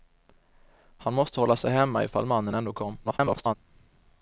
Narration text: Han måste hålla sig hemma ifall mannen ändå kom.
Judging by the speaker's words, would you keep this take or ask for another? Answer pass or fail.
fail